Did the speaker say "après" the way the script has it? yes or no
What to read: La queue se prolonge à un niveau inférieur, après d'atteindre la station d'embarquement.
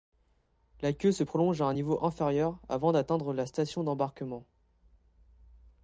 no